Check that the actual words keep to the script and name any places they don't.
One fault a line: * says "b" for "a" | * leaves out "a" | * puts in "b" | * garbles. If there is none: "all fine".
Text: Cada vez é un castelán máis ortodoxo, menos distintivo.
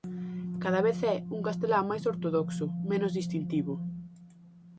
all fine